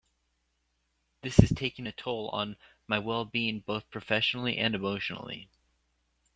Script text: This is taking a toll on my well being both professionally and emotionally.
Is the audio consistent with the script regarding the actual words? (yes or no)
yes